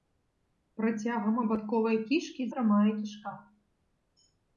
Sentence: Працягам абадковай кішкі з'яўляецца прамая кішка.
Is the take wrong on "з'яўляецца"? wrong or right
wrong